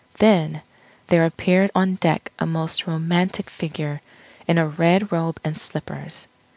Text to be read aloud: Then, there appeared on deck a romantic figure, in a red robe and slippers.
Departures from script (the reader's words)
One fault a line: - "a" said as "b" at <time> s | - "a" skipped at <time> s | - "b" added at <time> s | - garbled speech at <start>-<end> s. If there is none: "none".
- "most" added at 2.5 s